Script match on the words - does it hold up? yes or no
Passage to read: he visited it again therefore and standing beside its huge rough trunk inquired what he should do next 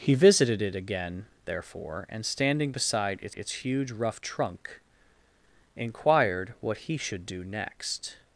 no